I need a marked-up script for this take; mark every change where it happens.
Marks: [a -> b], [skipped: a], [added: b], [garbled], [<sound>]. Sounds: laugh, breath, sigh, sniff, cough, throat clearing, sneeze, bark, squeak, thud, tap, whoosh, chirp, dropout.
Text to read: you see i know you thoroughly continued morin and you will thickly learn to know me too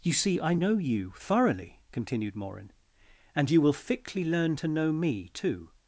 you see i know you thoroughly continued morin and you will thickly learn to know me too